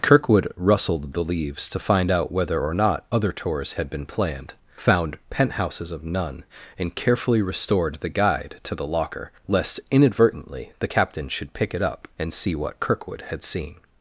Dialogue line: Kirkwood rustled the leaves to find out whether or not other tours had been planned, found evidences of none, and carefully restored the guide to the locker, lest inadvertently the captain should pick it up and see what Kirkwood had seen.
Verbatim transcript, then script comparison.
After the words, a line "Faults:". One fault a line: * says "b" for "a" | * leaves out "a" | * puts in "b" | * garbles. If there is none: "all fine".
Kirkwood rustled the leaves to find out whether or not other tours had been planned, found penthouses of none, and carefully restored the guide to the locker, lest inadvertently the captain should pick it up and see what Kirkwood had seen.
Faults:
* says "penthouses" for "evidences"